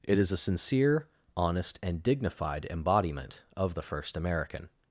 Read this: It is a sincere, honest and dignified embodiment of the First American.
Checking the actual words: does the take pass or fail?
pass